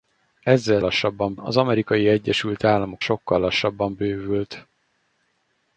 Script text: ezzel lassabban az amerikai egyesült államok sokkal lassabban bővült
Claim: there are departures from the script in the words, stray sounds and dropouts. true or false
false